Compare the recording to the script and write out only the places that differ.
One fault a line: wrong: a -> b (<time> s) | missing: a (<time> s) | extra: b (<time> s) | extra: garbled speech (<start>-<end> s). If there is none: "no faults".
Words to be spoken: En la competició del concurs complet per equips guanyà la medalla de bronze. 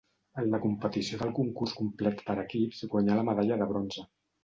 no faults